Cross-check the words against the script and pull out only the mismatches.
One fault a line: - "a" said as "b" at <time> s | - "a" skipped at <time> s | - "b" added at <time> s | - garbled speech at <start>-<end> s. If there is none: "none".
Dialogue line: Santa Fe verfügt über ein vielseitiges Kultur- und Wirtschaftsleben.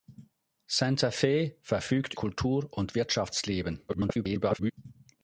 - "über ein vielseitiges" skipped at 2.1 s
- garbled speech at 3.9-4.7 s